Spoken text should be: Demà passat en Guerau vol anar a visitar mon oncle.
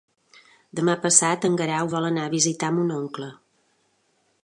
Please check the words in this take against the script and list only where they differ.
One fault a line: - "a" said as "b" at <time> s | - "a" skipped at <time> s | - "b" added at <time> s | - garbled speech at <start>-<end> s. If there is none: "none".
none